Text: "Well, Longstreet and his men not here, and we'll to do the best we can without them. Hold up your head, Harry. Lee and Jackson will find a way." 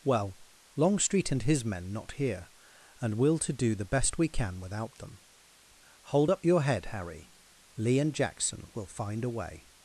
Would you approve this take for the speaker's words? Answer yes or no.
yes